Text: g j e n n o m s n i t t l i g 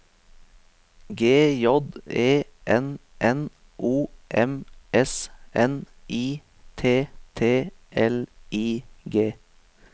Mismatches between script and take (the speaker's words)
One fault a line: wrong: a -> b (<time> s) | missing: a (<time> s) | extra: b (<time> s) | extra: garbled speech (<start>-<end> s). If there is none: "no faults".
no faults